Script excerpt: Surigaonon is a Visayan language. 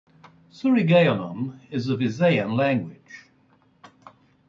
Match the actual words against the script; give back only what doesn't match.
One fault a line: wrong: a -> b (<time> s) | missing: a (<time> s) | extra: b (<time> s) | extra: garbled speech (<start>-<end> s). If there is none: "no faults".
no faults